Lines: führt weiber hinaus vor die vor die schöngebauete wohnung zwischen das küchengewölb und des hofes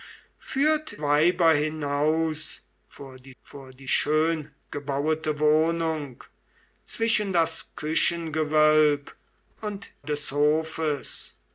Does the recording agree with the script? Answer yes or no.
yes